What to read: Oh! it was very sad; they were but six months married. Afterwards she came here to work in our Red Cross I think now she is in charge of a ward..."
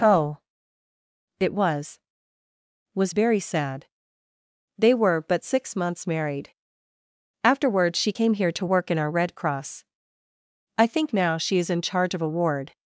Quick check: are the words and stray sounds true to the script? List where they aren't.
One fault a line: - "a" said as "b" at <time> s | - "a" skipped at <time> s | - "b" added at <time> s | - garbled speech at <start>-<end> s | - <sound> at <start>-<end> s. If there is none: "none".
- "was" added at 3.0 s